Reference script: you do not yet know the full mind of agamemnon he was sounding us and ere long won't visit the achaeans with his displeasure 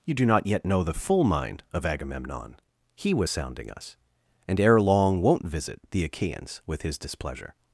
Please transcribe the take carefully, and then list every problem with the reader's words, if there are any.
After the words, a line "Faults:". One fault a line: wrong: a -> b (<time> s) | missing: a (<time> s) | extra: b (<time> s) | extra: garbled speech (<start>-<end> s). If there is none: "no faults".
you do not yet know the full mind of agamemnon he was sounding us and ere long won't visit the achaeans with his displeasure
Faults:
no faults